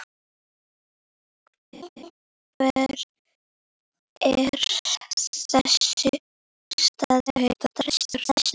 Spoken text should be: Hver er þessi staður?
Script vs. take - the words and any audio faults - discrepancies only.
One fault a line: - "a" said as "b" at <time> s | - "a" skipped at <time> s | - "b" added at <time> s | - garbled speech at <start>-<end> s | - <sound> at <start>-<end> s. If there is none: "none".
- laugh at 1.7-2.1 s
- garbled speech at 7.3-8.5 s